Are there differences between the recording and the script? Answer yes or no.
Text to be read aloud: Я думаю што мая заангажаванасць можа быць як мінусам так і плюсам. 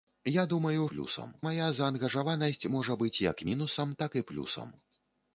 yes